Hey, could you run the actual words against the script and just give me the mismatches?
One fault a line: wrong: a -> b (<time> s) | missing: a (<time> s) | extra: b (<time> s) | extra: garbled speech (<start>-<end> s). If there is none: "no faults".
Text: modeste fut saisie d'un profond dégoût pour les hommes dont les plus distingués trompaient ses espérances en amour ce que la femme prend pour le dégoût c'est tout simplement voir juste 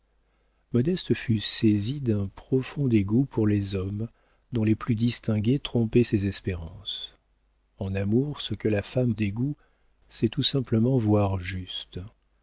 missing: prend pour le (9.1 s)